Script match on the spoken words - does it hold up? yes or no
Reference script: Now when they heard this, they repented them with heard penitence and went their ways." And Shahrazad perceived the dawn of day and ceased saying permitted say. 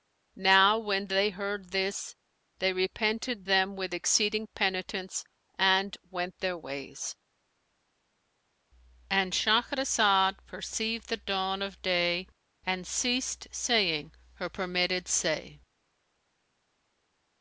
no